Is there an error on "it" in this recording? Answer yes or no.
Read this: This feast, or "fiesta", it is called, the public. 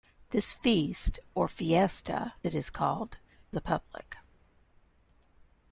no